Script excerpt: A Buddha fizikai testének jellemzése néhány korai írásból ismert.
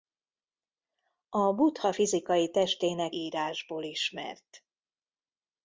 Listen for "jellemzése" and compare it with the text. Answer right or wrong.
wrong